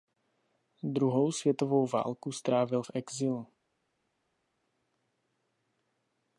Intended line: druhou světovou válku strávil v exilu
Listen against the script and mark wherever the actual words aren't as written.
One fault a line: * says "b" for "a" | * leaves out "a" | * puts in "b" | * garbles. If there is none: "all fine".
all fine